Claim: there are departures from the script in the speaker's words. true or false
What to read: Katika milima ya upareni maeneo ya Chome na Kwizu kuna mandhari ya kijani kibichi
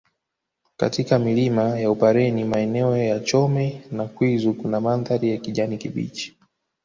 false